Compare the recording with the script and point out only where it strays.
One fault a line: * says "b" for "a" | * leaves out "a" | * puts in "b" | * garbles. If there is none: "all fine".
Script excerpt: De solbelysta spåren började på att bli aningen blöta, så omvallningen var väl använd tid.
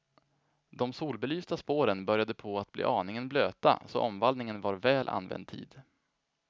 all fine